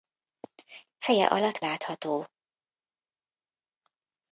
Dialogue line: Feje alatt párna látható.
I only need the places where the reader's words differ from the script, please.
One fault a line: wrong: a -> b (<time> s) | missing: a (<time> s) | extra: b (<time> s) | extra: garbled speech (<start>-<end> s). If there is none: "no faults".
missing: párna (1.6 s)